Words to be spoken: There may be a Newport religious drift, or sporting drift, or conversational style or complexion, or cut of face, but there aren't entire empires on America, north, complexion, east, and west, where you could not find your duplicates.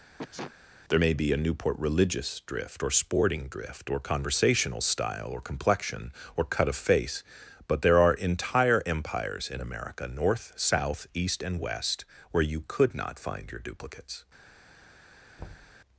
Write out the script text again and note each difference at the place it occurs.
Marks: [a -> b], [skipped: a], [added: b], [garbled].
There may be a Newport religious drift, or sporting drift, or conversational style or complexion, or cut of face, but there [aren't -> are] entire empires [on -> in] America, north, [complexion, -> south] east, and west, where you could not find your duplicates.